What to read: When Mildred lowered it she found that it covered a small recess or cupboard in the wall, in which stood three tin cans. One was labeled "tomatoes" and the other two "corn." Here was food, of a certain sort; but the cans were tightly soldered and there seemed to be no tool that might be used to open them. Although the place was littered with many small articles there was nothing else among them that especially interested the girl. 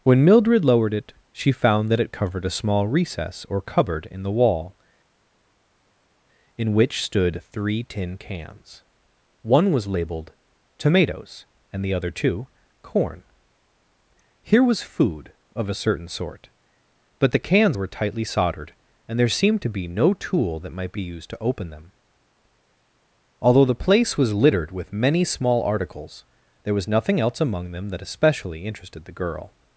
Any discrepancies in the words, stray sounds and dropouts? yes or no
no